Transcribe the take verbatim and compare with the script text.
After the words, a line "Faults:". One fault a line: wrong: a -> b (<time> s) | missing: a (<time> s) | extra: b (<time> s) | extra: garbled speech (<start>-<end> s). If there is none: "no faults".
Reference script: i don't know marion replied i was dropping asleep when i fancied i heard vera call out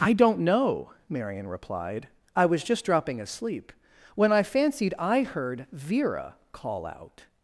i don't know marion replied i was just dropping asleep when i fancied i heard vera call out
Faults:
extra: just (2.6 s)